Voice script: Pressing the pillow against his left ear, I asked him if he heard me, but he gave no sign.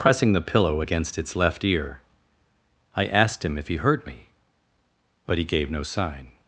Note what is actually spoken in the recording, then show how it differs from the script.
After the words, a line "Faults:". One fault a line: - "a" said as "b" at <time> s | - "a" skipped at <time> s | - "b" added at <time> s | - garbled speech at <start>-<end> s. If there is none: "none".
Pressing the pillow against its left ear, I asked him if he heard me, but he gave no sign.
Faults:
- "his" said as "its" at 1.2 s